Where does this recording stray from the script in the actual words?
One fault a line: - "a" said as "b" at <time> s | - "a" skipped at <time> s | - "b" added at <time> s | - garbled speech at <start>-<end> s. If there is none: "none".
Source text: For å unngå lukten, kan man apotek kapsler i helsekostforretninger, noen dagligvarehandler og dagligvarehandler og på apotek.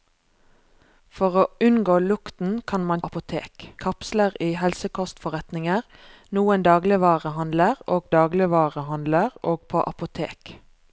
none